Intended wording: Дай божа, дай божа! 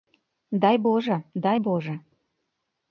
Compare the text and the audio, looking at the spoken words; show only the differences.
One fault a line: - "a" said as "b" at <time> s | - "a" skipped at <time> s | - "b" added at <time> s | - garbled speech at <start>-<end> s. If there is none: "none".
none